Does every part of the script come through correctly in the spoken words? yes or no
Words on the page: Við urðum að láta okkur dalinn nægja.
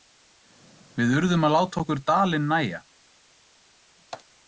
yes